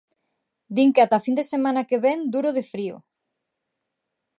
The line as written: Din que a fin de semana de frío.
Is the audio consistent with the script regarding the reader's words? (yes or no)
no